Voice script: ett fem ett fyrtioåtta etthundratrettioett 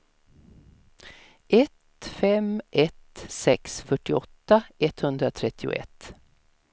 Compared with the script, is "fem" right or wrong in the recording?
right